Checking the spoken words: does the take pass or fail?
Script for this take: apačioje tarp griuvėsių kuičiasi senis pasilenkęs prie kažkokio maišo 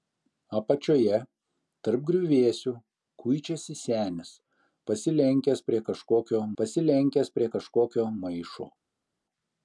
fail